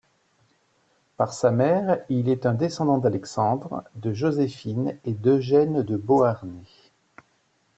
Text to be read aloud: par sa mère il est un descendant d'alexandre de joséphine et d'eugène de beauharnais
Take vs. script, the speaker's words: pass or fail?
pass